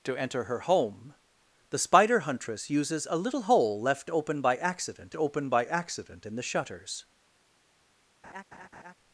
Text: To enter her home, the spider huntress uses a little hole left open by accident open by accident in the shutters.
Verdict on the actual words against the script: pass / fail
pass